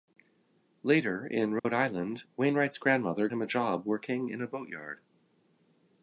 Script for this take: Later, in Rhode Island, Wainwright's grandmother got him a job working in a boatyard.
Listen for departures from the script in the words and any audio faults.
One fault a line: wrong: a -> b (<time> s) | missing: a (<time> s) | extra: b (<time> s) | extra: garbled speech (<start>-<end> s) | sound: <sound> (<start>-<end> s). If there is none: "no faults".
sound: dropout (1.6-1.6 s)
missing: got (3.3 s)